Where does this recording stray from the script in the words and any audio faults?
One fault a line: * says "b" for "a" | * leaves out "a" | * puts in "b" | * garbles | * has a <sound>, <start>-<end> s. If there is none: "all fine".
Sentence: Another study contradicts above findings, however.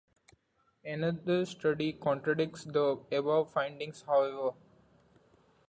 * puts in "the"